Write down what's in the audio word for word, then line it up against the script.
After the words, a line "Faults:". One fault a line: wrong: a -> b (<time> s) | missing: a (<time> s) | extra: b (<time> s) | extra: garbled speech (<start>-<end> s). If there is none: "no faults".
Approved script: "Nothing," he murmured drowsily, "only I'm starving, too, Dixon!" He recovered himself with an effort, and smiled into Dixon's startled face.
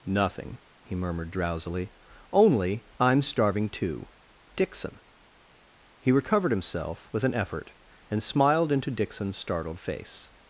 "Nothing," he murmured drowsily, "only I'm starving, too, Dixon!" He recovered himself with an effort, and smiled into Dixon's startled face.
Faults:
no faults